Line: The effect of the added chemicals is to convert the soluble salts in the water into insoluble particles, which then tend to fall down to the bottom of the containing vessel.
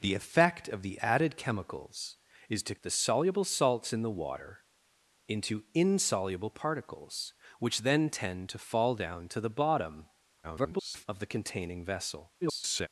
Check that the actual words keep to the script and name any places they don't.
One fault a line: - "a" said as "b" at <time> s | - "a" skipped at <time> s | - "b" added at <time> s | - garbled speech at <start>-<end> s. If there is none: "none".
- "convert" skipped at 2.8 s
- garbled speech at 10.4-11.1 s
- garbled speech at 12.4-12.9 s